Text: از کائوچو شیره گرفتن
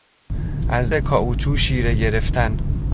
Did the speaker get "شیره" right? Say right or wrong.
right